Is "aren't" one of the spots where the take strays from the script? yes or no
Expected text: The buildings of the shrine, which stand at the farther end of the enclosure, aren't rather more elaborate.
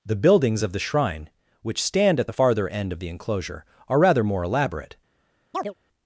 yes